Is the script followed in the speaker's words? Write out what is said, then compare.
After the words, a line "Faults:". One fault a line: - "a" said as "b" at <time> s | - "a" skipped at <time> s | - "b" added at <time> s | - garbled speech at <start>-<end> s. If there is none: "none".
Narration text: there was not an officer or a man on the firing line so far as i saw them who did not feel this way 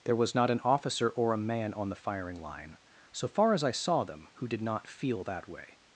there was not an officer or a man on the firing line so far as i saw them who did not feel that way
Faults:
- "this" said as "that" at 5.2 s